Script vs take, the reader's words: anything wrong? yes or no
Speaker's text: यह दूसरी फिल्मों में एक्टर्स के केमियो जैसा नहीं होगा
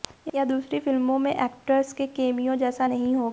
no